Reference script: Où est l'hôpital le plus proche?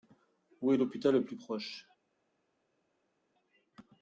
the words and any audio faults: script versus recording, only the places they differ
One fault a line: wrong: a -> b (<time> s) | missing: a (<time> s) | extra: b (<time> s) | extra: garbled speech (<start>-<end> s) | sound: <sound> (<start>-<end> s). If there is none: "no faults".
no faults